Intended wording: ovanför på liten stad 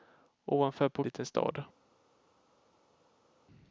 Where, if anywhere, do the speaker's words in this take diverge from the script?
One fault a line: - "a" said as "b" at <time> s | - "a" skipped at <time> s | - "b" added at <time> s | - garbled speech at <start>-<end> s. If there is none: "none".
none